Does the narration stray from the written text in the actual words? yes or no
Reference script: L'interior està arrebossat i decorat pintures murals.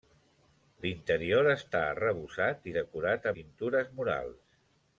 no